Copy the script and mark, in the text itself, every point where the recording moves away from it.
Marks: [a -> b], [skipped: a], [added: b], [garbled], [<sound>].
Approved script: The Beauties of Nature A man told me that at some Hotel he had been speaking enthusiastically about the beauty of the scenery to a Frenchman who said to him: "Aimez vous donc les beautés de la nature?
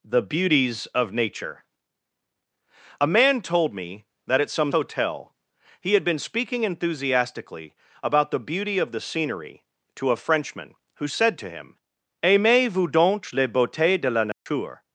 The Beauties of Nature A man told me that at some Hotel he had been speaking enthusiastically about the beauty of the scenery to a Frenchman who said to him: "Aimez vous donc les beautés de la nature? [dropout]